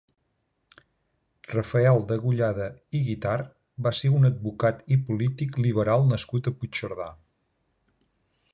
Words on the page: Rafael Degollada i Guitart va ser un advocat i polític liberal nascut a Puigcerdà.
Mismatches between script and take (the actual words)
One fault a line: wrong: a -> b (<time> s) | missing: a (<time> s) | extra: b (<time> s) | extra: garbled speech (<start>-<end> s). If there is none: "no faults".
no faults